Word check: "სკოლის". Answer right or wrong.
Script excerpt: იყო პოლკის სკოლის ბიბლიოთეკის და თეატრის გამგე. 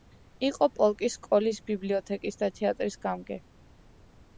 right